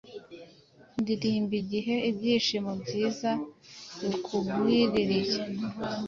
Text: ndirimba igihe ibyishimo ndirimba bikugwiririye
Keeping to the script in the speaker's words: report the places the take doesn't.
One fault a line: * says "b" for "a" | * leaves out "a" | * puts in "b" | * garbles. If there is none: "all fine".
* says "byiza" for "ndirimba"